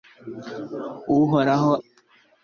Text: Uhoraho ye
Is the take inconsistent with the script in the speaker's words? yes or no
no